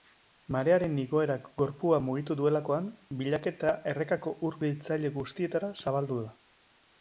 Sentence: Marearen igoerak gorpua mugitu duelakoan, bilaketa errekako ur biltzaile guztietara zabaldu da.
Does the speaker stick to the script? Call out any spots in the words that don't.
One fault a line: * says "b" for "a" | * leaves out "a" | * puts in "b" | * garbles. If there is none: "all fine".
all fine